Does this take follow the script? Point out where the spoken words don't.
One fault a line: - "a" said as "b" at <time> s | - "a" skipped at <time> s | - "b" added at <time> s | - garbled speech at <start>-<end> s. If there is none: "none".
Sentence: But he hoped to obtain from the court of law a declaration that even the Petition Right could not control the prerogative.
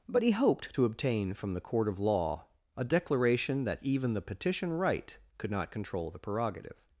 none